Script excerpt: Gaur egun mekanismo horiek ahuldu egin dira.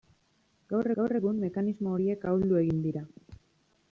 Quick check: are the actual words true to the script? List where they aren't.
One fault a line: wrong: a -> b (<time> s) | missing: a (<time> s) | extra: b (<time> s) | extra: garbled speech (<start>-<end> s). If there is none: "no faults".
extra: gaur (1.0 s)